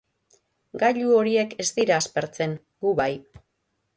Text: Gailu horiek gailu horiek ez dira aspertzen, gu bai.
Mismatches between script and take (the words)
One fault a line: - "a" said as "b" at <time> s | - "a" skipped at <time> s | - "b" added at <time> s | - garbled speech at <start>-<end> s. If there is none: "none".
- "gailu horiek" skipped at 1.5 s